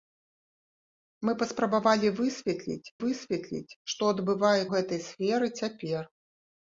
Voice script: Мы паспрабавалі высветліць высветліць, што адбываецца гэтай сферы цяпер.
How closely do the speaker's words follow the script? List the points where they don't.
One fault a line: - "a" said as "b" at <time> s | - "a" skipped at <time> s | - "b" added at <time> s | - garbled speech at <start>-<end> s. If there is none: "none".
none